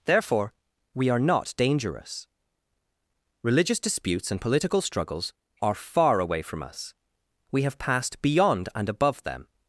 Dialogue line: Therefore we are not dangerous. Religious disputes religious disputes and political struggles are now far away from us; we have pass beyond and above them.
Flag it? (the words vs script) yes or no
yes